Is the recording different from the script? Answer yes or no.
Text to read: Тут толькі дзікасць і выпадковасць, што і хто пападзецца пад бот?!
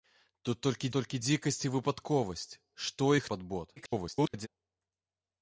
yes